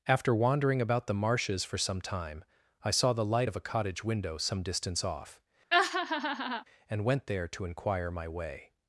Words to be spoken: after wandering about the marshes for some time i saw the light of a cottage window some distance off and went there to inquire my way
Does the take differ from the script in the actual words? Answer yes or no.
no